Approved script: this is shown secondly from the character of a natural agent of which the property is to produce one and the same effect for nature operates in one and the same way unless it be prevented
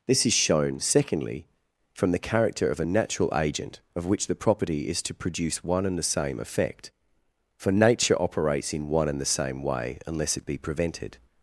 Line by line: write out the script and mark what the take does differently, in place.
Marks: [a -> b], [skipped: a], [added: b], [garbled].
this is shown secondly from the character of a natural agent of which the property is to produce one and the same effect for nature operates in one and the same way unless it be prevented